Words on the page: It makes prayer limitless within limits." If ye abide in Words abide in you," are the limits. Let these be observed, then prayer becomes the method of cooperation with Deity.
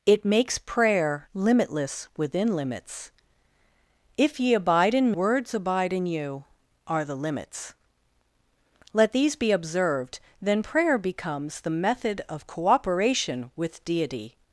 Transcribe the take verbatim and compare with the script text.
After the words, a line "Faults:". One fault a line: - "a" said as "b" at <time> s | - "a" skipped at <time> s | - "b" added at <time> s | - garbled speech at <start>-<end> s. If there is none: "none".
It makes prayer limitless within limits." If ye abide in Words abide in you," are the limits. Let these be observed, then prayer becomes the method of cooperation with Deity.
Faults:
none